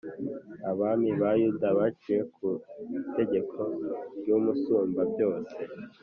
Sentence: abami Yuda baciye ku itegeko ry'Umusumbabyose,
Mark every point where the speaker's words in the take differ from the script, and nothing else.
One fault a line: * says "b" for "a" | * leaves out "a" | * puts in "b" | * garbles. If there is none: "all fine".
* puts in "ba"